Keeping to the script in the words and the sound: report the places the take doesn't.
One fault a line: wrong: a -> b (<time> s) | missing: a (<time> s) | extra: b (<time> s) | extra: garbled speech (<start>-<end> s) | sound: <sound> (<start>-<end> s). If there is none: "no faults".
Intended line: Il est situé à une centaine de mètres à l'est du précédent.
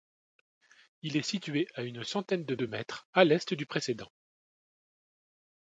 extra: de (2.5 s)